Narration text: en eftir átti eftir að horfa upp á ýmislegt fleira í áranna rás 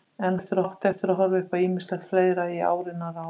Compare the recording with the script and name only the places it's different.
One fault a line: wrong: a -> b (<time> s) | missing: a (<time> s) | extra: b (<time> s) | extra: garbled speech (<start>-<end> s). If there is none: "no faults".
no faults